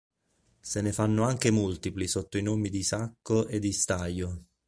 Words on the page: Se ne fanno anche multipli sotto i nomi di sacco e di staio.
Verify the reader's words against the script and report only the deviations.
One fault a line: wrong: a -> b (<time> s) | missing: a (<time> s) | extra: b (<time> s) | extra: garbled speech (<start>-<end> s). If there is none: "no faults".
no faults